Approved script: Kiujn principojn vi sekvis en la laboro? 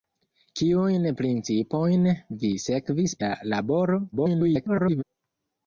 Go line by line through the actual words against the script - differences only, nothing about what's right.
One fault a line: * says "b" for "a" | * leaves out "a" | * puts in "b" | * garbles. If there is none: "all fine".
* leaves out "en"
* garbles